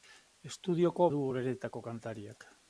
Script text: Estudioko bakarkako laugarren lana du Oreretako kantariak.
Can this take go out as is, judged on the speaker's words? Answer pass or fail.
fail